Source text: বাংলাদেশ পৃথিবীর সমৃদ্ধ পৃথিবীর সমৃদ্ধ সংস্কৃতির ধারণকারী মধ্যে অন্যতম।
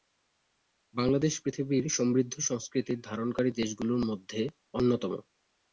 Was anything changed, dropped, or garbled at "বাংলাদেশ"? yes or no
no